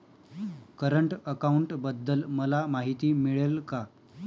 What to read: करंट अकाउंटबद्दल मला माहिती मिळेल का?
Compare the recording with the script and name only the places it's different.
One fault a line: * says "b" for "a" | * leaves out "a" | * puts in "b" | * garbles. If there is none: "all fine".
all fine